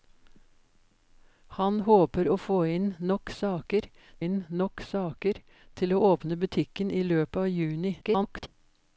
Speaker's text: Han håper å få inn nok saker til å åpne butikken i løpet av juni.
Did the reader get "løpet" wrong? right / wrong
right